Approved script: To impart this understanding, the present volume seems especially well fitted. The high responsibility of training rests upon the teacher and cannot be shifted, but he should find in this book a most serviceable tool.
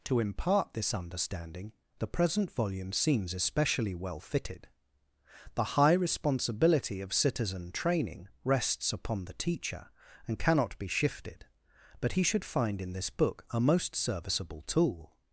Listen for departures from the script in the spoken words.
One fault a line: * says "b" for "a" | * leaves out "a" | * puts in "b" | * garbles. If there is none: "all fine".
* puts in "citizen"